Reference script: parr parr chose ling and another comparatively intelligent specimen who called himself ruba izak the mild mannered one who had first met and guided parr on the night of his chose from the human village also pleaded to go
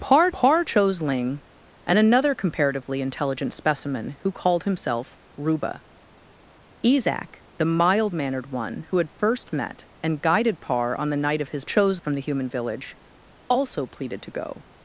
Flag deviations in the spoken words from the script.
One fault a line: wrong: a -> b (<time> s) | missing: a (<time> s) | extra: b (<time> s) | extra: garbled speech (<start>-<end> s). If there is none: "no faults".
no faults